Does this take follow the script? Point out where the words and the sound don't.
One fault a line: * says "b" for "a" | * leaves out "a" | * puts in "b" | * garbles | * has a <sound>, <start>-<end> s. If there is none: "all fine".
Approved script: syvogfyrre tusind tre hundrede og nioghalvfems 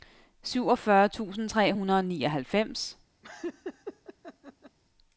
* has a laugh, 3.2-4.8 s